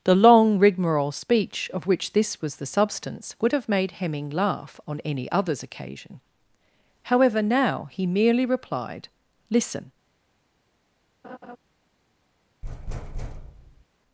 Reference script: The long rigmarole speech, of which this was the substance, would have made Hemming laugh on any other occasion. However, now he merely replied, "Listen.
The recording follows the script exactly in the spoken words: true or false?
false